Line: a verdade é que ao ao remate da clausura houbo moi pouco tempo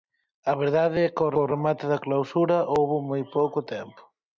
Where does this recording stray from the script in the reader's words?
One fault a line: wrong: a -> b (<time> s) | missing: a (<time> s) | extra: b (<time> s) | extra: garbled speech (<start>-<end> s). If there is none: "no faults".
no faults